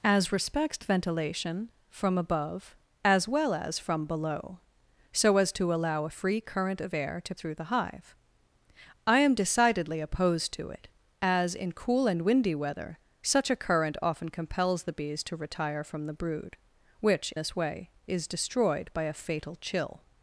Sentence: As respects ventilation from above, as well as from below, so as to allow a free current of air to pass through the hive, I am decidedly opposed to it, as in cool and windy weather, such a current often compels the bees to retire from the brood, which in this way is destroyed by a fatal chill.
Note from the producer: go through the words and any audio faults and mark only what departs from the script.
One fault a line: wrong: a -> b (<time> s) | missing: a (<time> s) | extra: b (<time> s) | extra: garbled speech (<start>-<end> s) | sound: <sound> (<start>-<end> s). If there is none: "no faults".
missing: pass (7.3 s)
missing: in (17.3 s)